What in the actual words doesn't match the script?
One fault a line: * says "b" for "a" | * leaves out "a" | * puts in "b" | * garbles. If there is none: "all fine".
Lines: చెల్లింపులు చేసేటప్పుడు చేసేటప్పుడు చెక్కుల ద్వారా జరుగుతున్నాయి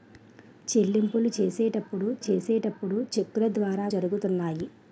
all fine